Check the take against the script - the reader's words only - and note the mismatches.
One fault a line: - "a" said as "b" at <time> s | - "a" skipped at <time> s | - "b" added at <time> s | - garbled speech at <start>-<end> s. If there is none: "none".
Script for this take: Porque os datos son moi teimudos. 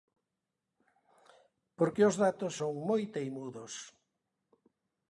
none